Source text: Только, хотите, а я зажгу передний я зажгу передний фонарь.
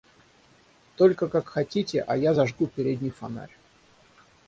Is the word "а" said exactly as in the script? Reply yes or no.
yes